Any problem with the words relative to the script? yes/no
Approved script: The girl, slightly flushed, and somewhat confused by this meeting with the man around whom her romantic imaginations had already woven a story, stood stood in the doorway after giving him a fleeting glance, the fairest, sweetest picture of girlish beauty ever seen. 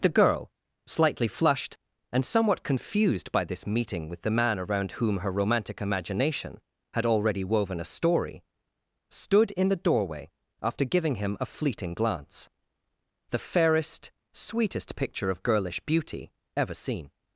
yes